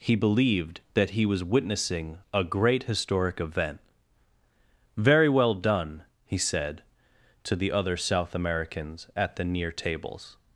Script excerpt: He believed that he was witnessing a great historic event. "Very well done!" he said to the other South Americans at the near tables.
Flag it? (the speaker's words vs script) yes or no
no